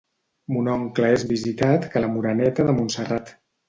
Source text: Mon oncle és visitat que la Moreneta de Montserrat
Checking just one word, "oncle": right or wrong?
right